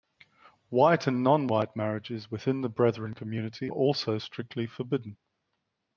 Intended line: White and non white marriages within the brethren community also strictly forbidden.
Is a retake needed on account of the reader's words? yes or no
no